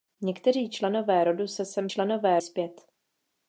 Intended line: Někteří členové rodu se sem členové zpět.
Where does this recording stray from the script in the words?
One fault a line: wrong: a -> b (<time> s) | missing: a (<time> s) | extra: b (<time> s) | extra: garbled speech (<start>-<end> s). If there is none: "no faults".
no faults